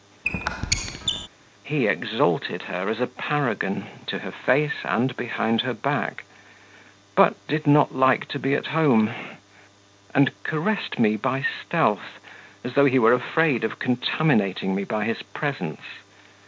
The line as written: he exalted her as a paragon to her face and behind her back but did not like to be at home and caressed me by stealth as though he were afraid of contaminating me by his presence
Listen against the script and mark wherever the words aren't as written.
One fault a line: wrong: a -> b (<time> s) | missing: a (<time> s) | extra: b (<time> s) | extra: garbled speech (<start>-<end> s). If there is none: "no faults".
no faults